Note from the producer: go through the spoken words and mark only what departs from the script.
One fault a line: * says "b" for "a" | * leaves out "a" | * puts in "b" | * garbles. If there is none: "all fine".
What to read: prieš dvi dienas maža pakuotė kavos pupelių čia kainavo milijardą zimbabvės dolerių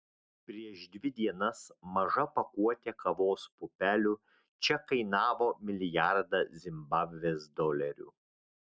all fine